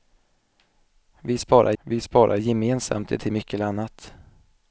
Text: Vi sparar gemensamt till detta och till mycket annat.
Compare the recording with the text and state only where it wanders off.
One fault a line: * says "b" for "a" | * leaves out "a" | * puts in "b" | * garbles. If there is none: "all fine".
* puts in "vi sparar"
* leaves out "detta och"